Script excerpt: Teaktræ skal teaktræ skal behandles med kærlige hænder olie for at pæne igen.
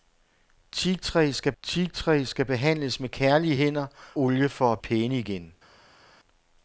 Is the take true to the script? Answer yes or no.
yes